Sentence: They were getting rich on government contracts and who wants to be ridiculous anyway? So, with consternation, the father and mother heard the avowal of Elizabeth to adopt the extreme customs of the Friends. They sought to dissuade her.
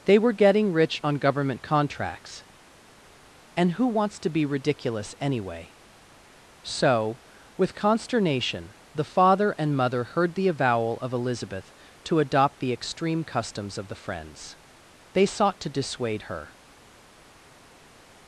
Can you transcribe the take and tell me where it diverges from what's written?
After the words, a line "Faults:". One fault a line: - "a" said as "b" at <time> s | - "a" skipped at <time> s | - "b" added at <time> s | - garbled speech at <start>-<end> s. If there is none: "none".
They were getting rich on government contracts and who wants to be ridiculous anyway? So, with consternation, the father and mother heard the avowal of Elizabeth to adopt the extreme customs of the Friends. They sought to dissuade her.
Faults:
none